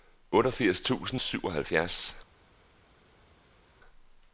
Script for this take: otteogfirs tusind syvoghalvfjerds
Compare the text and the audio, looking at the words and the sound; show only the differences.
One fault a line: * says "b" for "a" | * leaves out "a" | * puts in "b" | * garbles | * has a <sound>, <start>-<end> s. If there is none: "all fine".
all fine